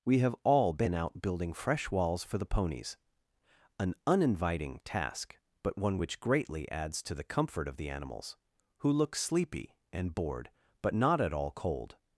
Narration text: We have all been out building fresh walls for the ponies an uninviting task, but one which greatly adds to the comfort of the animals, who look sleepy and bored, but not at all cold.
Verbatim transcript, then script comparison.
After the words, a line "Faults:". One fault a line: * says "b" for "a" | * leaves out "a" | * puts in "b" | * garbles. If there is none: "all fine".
We have all been out building fresh walls for the ponies an uninviting task, but one which greatly adds to the comfort of the animals, who look sleepy and bored, but not at all cold.
Faults:
all fine